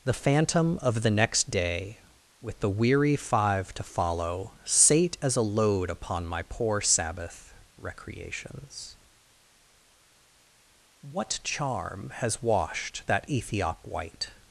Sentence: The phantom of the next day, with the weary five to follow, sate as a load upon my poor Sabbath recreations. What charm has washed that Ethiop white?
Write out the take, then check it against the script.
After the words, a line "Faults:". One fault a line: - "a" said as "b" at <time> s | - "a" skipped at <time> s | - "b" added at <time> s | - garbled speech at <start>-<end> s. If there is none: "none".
The phantom of the next day, with the weary five to follow, sate as a load upon my poor Sabbath recreations. What charm has washed that Ethiop white?
Faults:
none